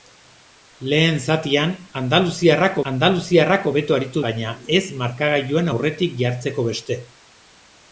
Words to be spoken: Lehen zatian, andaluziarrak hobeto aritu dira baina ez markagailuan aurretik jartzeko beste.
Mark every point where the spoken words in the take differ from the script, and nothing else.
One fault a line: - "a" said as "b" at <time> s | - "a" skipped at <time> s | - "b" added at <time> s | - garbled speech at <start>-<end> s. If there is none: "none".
- "andaluziarrak" added at 2.9 s
- "dira" skipped at 4.2 s